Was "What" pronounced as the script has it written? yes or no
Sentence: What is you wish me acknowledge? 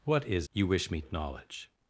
yes